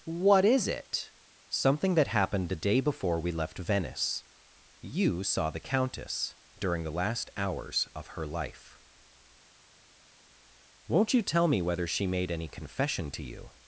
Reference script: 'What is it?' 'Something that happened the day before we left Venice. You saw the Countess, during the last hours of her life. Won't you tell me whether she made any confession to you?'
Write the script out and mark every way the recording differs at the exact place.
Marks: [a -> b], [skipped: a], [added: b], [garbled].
'What is it?' 'Something that happened the day before we left Venice. You saw the Countess, during the last hours of her life. Won't you tell me whether she made any confession to you?'